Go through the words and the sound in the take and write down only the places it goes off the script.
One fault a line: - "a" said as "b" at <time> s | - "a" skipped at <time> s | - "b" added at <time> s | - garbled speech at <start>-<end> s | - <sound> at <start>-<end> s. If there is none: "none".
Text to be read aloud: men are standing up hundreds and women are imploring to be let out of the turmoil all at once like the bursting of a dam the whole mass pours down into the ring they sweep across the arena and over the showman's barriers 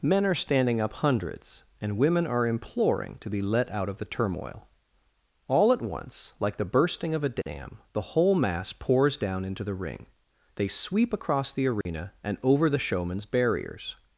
- dropout at 11.8-11.9 s